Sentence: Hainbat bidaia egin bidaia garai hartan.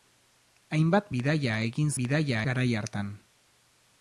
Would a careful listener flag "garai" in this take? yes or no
no